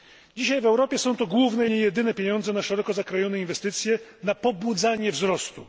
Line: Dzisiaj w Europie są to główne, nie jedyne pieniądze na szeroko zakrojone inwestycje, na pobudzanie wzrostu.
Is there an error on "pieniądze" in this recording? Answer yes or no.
no